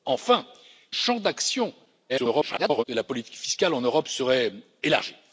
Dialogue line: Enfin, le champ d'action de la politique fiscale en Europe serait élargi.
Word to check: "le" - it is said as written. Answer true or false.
false